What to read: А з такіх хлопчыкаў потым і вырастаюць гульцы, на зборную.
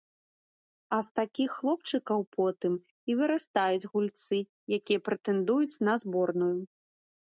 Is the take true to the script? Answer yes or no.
no